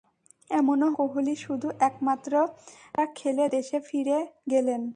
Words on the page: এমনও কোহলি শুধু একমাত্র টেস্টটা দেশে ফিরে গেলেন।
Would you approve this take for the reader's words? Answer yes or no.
yes